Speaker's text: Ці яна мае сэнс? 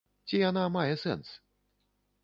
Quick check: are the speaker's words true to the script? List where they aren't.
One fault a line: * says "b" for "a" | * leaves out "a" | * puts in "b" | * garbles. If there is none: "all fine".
all fine